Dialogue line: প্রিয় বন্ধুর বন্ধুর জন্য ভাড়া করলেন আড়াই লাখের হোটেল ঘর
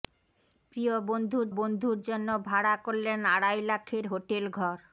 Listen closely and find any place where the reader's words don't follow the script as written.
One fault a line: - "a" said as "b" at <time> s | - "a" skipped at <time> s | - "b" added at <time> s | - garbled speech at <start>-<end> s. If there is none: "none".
none